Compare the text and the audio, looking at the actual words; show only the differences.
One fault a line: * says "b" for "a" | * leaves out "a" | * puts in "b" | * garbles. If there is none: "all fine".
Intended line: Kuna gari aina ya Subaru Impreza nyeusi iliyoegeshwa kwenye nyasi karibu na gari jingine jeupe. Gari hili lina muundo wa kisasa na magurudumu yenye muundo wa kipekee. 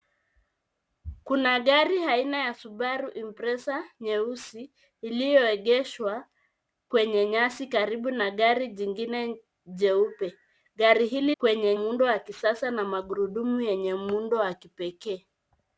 * says "kwenye" for "lina"